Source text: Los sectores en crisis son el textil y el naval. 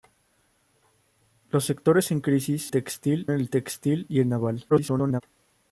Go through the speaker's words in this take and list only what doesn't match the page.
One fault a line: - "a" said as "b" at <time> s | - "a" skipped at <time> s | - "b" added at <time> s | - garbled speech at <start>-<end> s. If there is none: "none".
- "son" said as "textil" at 2.7 s
- garbled speech at 4.7-5.2 s